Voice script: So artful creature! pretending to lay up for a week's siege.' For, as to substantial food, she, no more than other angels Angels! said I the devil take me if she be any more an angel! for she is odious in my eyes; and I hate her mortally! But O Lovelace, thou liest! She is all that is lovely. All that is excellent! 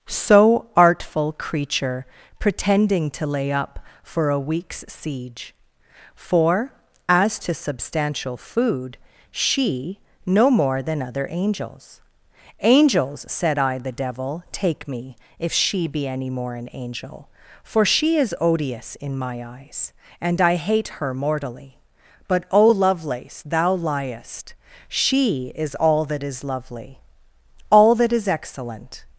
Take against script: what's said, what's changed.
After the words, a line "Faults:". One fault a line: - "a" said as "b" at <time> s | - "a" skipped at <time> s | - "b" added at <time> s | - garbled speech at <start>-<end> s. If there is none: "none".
So artful creature! pretending to lay up for a week's siege.' For, as to substantial food, she, no more than other angels Angels! said I the devil take me if she be any more an angel! for she is odious in my eyes; and I hate her mortally! But O Lovelace, thou liest! She is all that is lovely. All that is excellent!
Faults:
none